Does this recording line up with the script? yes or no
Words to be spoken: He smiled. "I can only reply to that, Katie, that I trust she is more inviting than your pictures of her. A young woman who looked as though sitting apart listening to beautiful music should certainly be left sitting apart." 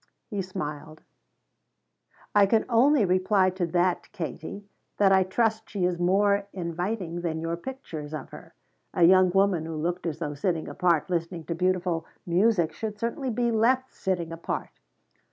yes